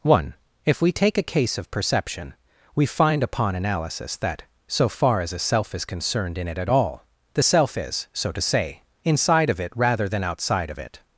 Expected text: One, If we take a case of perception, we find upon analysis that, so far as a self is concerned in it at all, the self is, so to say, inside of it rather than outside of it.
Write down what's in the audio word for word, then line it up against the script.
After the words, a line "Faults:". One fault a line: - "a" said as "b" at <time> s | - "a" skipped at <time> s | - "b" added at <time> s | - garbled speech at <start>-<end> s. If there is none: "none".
One, If we take a case of perception, we find upon analysis that, so far as a self is concerned in it at all, the self is, so to say, inside of it rather than outside of it.
Faults:
none